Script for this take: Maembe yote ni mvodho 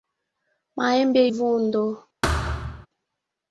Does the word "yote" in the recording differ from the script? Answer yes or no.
yes